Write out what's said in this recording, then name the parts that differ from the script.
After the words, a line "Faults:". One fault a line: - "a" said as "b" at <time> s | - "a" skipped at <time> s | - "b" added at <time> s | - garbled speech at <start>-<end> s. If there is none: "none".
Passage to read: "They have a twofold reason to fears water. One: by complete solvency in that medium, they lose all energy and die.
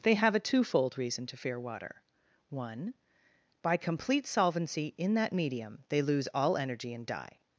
"They have a twofold reason to fear water. One: by complete solvency in that medium, they lose all energy and die.
Faults:
- "fears" said as "fear" at 1.4 s